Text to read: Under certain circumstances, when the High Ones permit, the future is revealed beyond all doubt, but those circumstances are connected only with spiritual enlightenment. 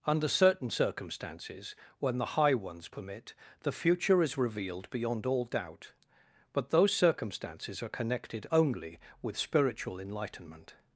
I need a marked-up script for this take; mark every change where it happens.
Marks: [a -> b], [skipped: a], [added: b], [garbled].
Under certain circumstances, when the High Ones permit, the future is revealed beyond all doubt, but those circumstances are connected only with spiritual enlightenment.